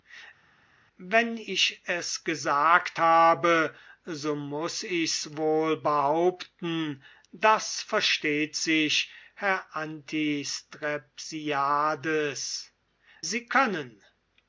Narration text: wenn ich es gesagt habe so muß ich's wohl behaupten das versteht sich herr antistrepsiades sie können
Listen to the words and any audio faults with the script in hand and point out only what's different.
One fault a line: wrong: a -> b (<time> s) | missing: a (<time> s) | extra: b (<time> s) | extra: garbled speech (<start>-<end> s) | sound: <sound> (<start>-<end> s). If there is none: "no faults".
no faults